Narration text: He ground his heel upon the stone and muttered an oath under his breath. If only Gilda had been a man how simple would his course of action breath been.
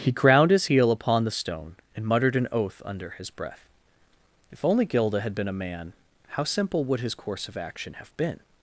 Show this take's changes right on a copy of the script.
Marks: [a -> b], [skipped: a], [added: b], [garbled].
He ground his heel upon the stone and muttered an oath under his breath. If only Gilda had been a man how simple would his course of action [breath -> have] been.